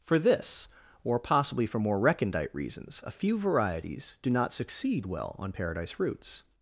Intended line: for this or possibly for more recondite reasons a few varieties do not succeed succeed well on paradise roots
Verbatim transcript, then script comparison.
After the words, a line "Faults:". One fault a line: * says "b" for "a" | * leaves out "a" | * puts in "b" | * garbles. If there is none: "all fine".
for this or possibly for more recondite reasons a few varieties do not succeed well on paradise roots
Faults:
* leaves out "succeed"